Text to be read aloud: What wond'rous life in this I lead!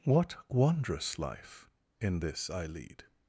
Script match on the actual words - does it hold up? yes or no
yes